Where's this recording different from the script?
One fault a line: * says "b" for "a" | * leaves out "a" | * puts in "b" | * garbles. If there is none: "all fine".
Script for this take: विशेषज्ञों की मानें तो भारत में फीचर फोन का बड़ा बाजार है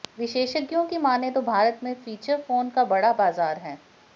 all fine